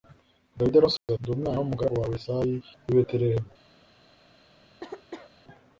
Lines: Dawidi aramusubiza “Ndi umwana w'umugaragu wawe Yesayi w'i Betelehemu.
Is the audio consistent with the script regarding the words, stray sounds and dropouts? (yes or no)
no